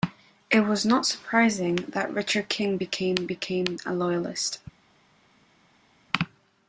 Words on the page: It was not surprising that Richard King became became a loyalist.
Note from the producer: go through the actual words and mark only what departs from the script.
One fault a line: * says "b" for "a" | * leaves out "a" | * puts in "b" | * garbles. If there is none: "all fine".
all fine